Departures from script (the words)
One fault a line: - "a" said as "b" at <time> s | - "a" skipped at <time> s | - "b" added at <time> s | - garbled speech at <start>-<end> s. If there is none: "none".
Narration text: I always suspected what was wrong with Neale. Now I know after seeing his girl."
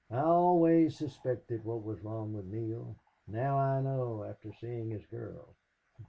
none